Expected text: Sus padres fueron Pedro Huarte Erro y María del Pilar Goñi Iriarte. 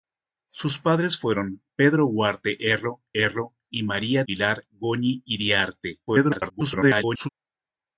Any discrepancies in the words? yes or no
yes